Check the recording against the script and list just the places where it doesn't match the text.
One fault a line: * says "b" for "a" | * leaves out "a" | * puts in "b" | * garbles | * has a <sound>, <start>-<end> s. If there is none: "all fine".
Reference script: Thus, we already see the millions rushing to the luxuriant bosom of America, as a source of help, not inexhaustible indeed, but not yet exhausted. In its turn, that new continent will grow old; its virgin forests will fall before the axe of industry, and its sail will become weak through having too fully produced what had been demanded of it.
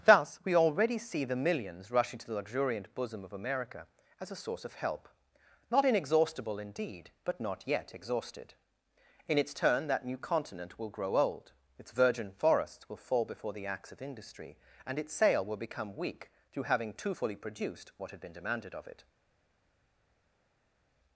all fine